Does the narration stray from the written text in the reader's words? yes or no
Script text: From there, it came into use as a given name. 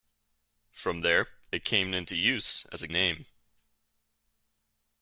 yes